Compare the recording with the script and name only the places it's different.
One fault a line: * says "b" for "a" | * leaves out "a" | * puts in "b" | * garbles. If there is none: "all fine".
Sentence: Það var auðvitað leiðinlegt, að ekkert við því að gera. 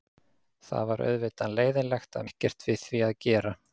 all fine